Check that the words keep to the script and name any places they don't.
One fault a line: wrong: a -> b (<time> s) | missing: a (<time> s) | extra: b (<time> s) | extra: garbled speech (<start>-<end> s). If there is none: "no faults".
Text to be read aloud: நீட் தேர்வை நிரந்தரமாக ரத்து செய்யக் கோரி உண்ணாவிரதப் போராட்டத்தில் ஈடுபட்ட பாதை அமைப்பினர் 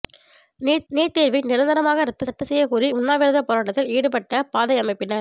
extra: நீட் (0.9 s)
extra: ரத்து (2.3 s)